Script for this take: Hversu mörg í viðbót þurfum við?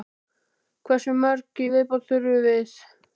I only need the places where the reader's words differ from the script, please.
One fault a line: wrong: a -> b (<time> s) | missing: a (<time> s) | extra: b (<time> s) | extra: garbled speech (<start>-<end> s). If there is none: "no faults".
no faults